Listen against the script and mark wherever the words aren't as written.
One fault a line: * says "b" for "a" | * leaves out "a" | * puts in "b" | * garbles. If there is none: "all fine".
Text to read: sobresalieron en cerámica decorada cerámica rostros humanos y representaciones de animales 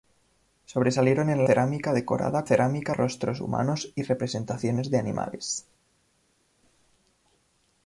all fine